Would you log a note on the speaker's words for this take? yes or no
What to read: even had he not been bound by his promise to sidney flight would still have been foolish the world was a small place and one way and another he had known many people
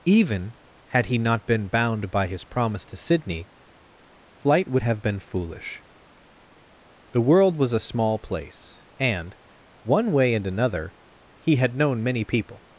yes